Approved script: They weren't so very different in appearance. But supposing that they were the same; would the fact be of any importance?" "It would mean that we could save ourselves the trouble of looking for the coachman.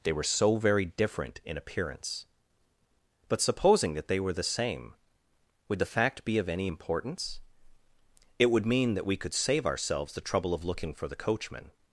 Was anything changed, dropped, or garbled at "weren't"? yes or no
yes